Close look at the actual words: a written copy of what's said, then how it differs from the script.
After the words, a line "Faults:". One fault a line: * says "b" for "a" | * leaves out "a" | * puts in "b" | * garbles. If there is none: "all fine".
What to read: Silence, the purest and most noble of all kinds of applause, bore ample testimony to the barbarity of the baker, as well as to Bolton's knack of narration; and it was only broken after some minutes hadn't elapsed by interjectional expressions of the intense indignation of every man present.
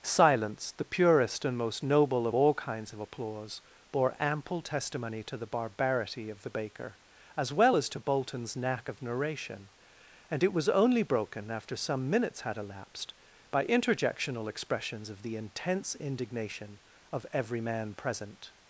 Silence, the purest and most noble of all kinds of applause, bore ample testimony to the barbarity of the baker, as well as to Bolton's knack of narration; and it was only broken after some minutes had elapsed by interjectional expressions of the intense indignation of every man present.
Faults:
* says "had" for "hadn't"